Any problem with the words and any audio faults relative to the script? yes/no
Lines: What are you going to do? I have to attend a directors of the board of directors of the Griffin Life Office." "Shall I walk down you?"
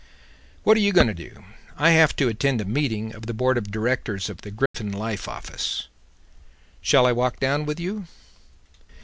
yes